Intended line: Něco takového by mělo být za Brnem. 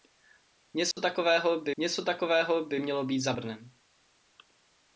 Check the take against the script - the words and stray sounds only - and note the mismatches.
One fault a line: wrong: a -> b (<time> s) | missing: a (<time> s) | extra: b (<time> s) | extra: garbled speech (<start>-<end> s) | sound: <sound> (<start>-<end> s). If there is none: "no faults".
sound: dropout (0.9-1.0 s)
extra: něco takového by (1.8 s)